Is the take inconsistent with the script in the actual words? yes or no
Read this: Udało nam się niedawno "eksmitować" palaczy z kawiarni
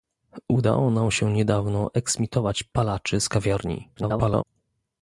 yes